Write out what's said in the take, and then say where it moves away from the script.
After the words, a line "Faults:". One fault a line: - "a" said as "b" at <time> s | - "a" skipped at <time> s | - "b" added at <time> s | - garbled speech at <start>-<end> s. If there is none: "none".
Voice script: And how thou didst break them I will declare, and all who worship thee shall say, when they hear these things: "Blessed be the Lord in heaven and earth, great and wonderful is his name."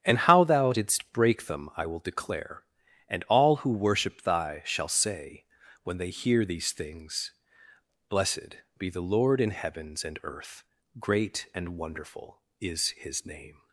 And how thou didst break them I will declare, and all who worship thy shall say, when they hear these things: "Blessed be the Lord in heavens and earth, great and wonderful is his name."
Faults:
- "thee" said as "thy" at 4.2 s
- "heaven" said as "heavens" at 9.5 s